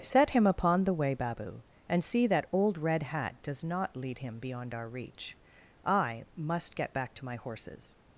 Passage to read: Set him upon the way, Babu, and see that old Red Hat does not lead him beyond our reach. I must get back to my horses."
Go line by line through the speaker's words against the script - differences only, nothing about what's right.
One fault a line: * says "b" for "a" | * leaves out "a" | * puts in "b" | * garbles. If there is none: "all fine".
all fine